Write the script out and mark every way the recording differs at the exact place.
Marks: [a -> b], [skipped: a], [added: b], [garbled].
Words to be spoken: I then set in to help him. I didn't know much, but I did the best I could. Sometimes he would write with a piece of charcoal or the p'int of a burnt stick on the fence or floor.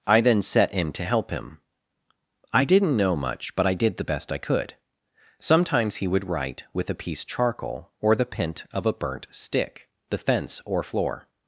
I then set in to help him. I didn't know much, but I did the best I could. Sometimes he would write with a piece [skipped: of] charcoal or the p'int of a burnt stick [skipped: on] the fence or floor.